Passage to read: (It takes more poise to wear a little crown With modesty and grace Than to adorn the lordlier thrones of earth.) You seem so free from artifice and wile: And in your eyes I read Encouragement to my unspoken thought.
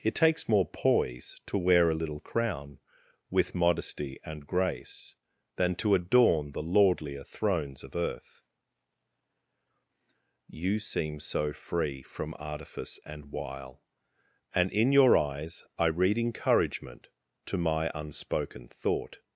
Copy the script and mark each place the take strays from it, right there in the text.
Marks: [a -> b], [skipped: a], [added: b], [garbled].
(It takes more poise to wear a little crown With modesty and grace Than to adorn the lordlier thrones of earth.) You seem so free from artifice and wile: And in your eyes I read Encouragement to my unspoken thought.